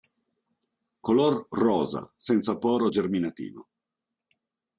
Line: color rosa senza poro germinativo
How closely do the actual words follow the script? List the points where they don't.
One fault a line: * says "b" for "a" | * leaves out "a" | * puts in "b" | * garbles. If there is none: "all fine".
all fine